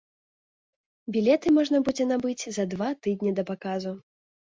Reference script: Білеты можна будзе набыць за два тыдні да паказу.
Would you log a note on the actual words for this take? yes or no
no